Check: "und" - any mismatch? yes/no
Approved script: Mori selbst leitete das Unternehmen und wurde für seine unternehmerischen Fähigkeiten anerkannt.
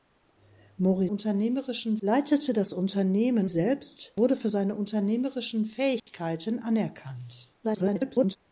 yes